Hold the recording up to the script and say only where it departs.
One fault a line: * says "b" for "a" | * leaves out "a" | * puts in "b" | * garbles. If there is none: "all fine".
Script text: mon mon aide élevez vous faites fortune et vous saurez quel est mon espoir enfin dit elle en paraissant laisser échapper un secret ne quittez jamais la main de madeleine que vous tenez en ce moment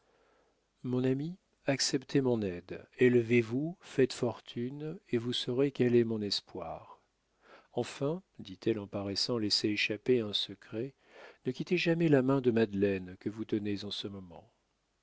* puts in "ami acceptez"